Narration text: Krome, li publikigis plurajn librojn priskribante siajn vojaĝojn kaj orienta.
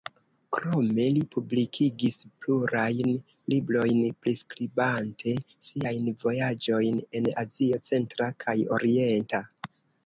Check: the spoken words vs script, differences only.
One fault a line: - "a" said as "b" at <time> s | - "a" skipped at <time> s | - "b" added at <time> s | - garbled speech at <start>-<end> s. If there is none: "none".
- "en Azio centra" added at 7.2 s